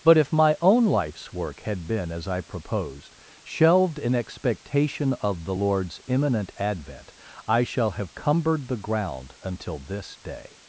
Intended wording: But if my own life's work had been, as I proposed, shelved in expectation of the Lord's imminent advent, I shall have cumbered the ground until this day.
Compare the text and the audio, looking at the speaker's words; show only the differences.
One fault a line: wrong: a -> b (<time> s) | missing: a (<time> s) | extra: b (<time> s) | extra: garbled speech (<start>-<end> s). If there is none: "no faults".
no faults